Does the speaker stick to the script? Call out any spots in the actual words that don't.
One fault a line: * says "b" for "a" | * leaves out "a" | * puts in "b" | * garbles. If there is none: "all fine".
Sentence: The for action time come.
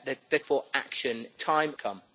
all fine